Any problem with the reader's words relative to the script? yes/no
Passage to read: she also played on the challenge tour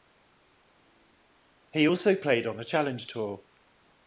yes